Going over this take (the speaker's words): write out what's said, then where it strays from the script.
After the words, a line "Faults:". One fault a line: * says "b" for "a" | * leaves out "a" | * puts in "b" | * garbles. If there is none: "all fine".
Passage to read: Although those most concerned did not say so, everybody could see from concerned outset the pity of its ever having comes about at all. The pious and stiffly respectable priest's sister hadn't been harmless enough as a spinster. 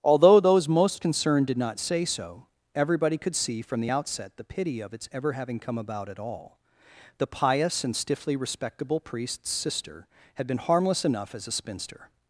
Although those most concerned did not say so, everybody could see from the outset the pity of its ever having come about at all. The pious and stiffly respectable priest's sister had been harmless enough as a spinster.
Faults:
* says "the" for "concerned"
* says "come" for "comes"
* says "had" for "hadn't"